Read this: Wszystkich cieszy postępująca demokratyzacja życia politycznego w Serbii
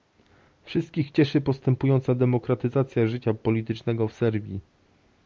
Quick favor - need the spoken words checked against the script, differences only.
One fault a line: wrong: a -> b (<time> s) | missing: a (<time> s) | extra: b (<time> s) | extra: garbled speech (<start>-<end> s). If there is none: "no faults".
no faults